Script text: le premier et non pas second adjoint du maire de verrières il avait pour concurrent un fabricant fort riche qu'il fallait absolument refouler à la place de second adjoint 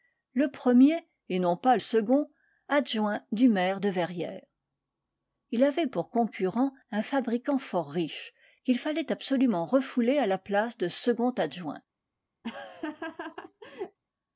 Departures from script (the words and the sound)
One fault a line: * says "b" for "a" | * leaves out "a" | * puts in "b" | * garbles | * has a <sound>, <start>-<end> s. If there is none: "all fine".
* has a laugh, 12.4-14.0 s